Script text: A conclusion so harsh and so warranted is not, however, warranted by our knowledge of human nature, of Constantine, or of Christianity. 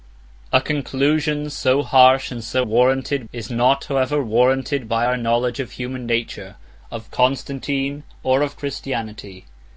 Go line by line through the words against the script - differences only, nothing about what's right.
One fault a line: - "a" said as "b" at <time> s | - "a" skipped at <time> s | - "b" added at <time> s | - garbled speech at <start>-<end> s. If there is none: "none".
none